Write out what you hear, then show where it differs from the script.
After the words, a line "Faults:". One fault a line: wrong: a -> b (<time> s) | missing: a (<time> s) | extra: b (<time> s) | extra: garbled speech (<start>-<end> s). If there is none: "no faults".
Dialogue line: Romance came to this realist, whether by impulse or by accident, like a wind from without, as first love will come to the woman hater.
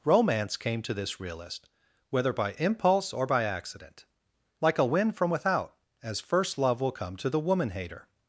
Romance came to this realist, whether by impulse or by accident, like a wind from without, as first love will come to the woman hater.
Faults:
no faults